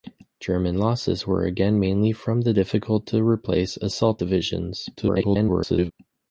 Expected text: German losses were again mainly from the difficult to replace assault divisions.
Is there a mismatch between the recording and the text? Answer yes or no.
yes